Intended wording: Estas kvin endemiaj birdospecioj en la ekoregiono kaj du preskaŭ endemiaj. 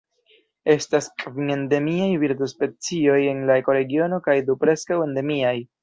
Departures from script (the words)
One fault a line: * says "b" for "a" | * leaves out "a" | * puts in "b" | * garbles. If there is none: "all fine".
all fine